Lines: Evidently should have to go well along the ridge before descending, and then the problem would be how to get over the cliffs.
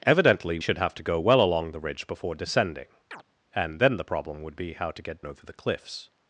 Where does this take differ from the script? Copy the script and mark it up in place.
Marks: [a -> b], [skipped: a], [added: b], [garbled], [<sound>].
Evidently should have to go well along the ridge before descending, [chirp] and then the problem would be how to get over the cliffs.